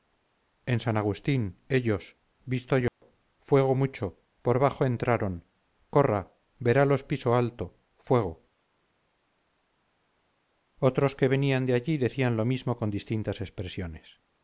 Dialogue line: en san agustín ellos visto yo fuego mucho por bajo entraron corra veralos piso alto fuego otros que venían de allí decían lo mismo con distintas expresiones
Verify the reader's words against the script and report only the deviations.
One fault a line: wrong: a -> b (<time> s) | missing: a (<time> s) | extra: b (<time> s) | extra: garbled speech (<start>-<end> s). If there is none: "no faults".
no faults